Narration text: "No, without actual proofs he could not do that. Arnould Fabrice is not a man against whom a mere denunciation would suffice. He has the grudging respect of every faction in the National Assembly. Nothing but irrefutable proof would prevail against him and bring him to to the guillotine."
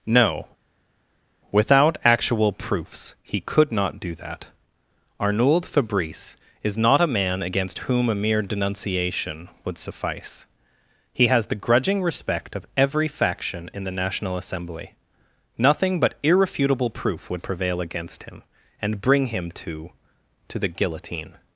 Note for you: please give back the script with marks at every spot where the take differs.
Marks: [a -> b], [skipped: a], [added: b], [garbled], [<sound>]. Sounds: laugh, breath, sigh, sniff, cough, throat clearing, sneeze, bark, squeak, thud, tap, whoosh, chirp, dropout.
"No, without actual proofs he could not do that. Arnould Fabrice is not a man against whom a mere denunciation would suffice. He has the grudging respect of every faction in the National Assembly. Nothing but irrefutable proof would prevail against him and bring him to to the guillotine."